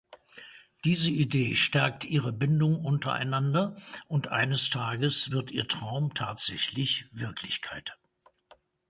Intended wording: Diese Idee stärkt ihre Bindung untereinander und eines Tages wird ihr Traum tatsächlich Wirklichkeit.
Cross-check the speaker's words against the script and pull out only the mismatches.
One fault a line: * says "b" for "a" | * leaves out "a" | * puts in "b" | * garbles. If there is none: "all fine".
all fine